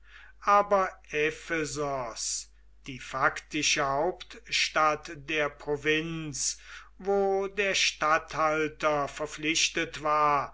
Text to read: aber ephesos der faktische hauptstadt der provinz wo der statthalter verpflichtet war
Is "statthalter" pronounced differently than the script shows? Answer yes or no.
no